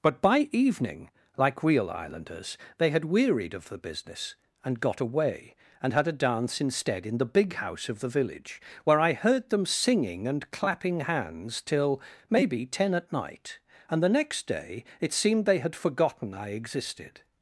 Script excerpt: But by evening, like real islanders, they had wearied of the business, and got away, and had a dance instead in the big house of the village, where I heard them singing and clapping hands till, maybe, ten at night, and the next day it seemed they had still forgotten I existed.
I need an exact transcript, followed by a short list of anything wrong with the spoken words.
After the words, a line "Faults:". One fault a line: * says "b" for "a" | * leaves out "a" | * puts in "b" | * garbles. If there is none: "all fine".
But by evening, like real islanders, they had wearied of the business, and got away, and had a dance instead in the big house of the village, where I heard them singing and clapping hands till, maybe, ten at night, and the next day it seemed they had forgotten I existed.
Faults:
* leaves out "still"